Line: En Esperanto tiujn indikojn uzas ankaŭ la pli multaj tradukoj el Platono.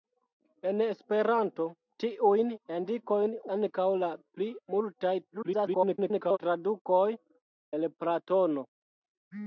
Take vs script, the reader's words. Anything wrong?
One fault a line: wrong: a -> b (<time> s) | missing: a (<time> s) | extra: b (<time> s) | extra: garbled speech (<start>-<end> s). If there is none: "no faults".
missing: uzas (3.4 s)
extra: garbled speech (5.3-6.4 s)